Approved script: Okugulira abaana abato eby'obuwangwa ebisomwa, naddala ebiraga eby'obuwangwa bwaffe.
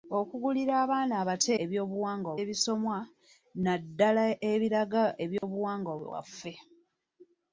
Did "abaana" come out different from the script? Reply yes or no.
no